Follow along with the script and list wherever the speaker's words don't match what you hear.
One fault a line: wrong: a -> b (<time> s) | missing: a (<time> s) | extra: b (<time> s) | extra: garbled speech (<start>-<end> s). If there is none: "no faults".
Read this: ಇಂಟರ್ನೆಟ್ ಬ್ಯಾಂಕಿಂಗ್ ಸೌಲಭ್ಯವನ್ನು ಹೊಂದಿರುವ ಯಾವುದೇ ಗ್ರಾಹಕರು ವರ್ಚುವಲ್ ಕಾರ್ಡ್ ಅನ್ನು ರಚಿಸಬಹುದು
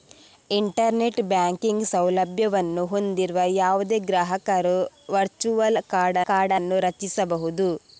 extra: ಕಾರ್ಡ್ (6.2 s)